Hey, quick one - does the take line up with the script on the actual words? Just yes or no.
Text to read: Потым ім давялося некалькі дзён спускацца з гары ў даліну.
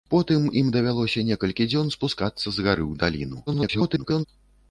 no